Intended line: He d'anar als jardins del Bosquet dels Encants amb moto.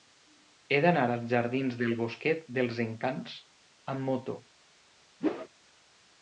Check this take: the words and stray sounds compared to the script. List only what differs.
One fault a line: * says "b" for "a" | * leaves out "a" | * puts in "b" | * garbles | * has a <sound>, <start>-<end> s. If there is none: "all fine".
* has a whoosh, 5.2-5.5 s